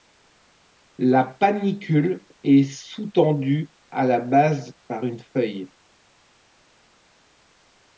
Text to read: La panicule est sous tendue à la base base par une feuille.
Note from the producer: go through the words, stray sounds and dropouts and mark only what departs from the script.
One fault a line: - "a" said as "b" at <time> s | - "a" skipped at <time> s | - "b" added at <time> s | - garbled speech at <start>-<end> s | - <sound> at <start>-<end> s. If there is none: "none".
- "base" skipped at 4.7 s